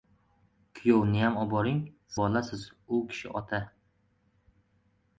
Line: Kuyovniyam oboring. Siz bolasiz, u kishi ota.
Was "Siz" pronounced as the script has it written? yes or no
no